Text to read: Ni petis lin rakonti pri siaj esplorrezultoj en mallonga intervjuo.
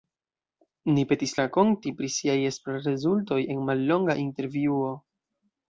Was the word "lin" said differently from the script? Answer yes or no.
yes